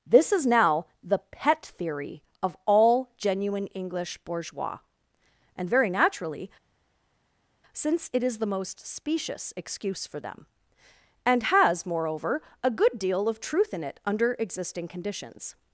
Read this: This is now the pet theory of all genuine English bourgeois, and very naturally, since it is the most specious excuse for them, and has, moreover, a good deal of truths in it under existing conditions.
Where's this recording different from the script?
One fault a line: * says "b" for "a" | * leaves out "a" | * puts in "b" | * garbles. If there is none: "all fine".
* says "truth" for "truths"